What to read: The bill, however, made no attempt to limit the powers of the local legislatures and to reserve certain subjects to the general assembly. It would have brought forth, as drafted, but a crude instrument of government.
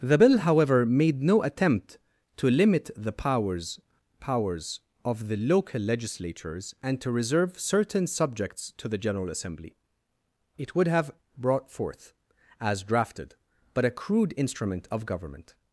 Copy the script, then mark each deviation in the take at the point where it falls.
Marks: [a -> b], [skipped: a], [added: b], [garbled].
The bill, however, made no attempt to limit the powers [added: powers] of the local legislatures and to reserve certain subjects to the general assembly. It would have brought forth, as drafted, but a crude instrument of government.